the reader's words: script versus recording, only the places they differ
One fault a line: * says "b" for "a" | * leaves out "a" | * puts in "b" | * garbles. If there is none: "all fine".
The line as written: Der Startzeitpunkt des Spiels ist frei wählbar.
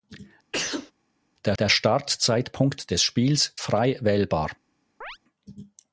* puts in "der"
* leaves out "ist"